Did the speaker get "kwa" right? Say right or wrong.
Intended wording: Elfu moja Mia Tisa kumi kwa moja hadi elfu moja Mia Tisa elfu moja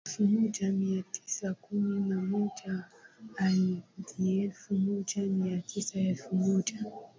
wrong